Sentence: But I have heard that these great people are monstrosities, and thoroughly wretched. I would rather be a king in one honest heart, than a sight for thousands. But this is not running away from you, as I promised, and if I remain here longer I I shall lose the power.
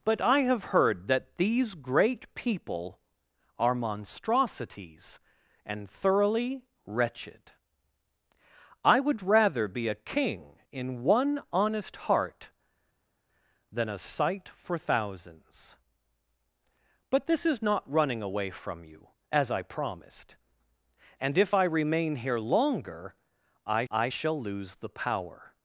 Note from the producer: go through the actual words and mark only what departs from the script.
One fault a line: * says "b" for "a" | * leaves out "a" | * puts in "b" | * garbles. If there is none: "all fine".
all fine